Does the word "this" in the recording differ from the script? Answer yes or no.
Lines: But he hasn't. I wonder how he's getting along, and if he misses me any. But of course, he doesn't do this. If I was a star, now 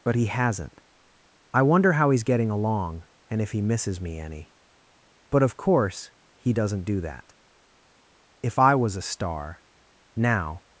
yes